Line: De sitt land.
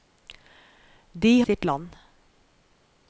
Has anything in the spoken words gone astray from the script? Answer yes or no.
no